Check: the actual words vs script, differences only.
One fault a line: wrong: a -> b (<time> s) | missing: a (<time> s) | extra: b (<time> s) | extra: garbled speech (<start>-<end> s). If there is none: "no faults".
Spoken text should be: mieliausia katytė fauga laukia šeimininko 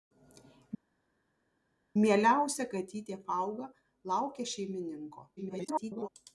extra: garbled speech (5.4-6.1 s)